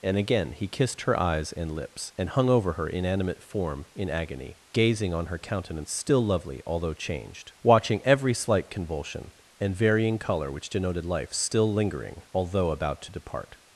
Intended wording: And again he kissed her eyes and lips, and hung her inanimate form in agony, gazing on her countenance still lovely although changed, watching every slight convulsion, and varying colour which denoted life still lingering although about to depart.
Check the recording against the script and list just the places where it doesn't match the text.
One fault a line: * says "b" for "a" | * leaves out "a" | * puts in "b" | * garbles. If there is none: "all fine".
* puts in "over"